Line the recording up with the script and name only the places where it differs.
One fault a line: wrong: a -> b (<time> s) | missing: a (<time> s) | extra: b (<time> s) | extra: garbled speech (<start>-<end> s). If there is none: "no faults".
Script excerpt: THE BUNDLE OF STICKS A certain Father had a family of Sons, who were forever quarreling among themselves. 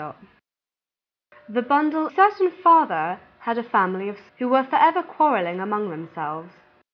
missing: OF STICKS A (2.1 s)
missing: Sons (4.2 s)